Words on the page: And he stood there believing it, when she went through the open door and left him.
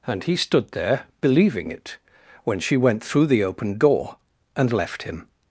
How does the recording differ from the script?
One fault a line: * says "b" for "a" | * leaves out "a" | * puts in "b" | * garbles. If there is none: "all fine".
all fine